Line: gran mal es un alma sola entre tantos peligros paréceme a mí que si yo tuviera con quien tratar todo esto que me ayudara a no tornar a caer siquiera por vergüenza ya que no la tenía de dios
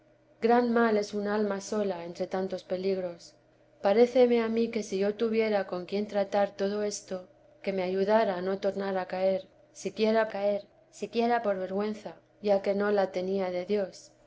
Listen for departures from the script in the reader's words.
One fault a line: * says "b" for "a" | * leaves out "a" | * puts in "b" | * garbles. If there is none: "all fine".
* puts in "caer siquiera"